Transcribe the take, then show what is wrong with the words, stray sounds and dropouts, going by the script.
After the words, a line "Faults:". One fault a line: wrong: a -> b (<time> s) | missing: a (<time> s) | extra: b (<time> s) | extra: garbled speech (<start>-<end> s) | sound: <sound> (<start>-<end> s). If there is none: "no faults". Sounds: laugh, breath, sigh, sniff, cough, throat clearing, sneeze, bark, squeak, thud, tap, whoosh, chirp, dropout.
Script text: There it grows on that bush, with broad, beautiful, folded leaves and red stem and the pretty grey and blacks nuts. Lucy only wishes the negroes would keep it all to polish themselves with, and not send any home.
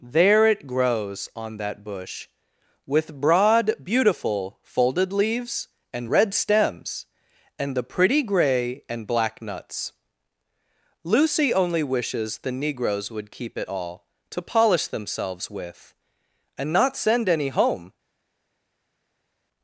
There it grows on that bush, with broad, beautiful, folded leaves and red stems and the pretty grey and black nuts. Lucy only wishes the negroes would keep it all to polish themselves with, and not send any home.
Faults:
wrong: stem -> stems (6.3 s)
wrong: blacks -> black (9.1 s)